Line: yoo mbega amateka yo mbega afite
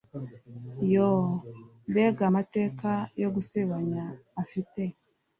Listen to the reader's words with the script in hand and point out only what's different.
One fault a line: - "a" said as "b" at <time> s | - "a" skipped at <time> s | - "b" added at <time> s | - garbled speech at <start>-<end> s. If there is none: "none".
- "mbega" said as "gusebanya" at 3.3 s